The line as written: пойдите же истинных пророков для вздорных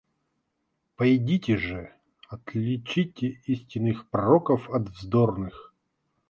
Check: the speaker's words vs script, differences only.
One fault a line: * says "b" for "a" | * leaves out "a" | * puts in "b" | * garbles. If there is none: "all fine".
* puts in "отличите"
* says "от" for "для"